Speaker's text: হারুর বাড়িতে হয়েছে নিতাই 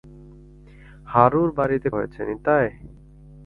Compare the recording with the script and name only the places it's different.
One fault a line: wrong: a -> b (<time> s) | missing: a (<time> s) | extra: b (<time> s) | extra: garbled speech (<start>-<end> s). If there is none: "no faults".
no faults